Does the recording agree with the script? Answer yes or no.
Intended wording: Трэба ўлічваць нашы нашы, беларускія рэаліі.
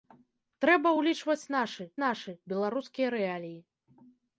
yes